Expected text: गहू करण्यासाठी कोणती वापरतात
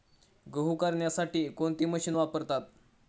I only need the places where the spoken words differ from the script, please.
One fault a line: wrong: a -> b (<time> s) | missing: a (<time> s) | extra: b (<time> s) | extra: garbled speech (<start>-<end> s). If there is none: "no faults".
extra: मशीन (1.9 s)